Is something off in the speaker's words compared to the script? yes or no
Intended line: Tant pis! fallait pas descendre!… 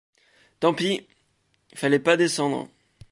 no